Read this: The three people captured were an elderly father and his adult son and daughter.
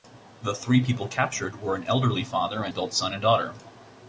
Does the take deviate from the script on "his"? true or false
true